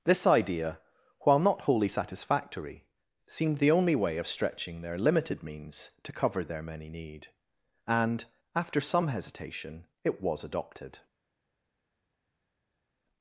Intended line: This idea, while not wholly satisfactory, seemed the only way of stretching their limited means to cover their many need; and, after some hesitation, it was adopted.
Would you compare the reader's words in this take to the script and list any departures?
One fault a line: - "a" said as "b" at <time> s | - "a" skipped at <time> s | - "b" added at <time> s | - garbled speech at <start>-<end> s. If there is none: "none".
none